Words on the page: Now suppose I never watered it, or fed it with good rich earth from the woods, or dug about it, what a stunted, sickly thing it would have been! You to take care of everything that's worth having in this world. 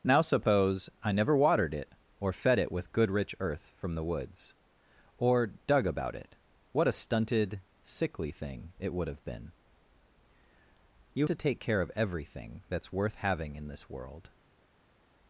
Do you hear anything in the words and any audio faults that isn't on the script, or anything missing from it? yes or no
no